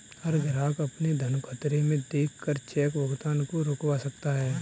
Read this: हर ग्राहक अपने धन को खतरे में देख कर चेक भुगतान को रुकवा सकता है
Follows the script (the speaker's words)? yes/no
no